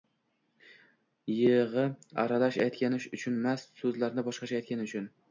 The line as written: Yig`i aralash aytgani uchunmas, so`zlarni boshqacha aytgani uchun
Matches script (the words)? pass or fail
pass